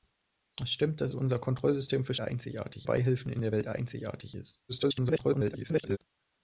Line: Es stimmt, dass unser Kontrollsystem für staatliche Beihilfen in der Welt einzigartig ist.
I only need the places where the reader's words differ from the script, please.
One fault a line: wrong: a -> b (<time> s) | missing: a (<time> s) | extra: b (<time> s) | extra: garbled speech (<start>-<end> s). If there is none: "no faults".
wrong: staatliche -> einzigartig (2.2 s)
extra: garbled speech (4.7-6.0 s)